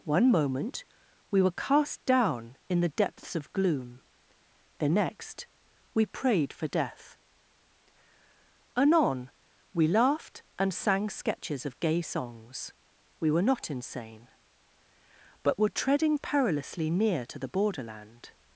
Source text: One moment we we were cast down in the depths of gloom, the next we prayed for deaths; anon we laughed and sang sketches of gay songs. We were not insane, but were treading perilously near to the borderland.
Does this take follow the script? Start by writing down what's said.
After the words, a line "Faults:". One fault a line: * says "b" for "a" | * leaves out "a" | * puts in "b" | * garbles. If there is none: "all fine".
One moment we were cast down in the depths of gloom, the next we prayed for death; anon we laughed and sang sketches of gay songs. We were not insane, but were treading perilously near to the borderland.
Faults:
* leaves out "we"
* says "death" for "deaths"